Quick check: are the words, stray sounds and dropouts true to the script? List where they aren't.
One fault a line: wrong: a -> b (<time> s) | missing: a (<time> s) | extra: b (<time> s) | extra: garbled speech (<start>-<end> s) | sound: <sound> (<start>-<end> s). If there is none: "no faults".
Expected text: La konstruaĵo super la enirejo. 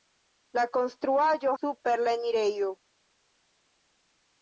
no faults